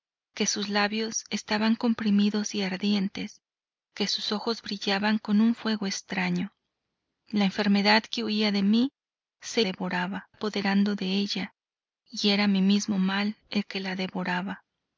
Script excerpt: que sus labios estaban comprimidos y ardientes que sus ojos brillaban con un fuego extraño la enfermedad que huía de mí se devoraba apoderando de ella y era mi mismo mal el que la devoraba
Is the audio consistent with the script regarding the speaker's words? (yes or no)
yes